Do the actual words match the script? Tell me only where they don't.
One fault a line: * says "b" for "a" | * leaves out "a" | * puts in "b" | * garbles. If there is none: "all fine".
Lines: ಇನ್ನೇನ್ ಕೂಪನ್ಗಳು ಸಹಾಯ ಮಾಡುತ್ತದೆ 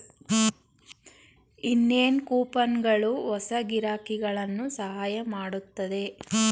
* puts in "ಹೊಸ ಗಿರಾಕಿಗಳನ್ನು"